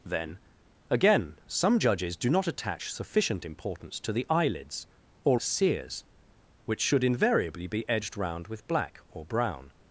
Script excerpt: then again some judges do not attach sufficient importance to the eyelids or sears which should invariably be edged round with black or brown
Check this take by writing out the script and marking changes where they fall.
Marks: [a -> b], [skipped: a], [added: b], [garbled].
then again some judges do not attach sufficient importance to the eyelids or sears which should invariably be edged round with black or brown